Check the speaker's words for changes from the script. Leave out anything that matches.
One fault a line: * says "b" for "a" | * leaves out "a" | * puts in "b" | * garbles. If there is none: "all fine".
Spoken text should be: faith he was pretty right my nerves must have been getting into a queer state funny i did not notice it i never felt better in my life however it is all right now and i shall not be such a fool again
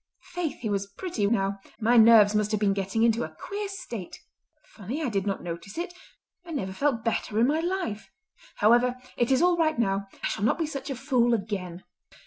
* says "now" for "right"
* leaves out "and"